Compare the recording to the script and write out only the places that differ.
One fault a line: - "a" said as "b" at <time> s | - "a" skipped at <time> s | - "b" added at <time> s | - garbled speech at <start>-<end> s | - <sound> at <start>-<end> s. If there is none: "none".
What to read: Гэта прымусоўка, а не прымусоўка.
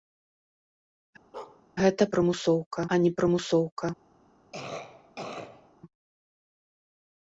- bark at 1.3-1.6 s
- cough at 4.5-5.7 s